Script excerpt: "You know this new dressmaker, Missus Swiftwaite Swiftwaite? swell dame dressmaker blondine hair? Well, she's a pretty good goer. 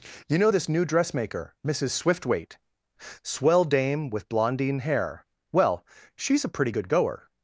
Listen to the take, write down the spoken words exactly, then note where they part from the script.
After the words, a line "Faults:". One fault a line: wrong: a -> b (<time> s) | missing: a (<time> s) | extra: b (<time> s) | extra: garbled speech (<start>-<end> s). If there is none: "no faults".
"You know this new dressmaker, Missus Swiftwaite? swell dame with blondine hair? Well, she's a pretty good goer.
Faults:
missing: Swiftwaite (2.6 s)
wrong: dressmaker -> with (4.1 s)